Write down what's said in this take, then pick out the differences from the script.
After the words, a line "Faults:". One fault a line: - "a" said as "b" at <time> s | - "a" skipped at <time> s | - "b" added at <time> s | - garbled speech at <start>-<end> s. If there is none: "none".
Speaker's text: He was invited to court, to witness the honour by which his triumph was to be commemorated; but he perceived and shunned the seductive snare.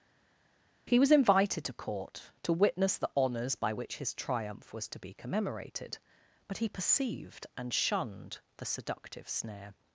He was invited to court, to witness the honours by which his triumph was to be commemorated; but he perceived and shunned the seductive snare.
Faults:
- "honour" said as "honours" at 3.1 s